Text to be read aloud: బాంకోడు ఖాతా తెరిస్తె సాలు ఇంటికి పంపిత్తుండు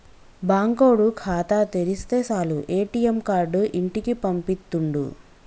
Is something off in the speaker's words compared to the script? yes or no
yes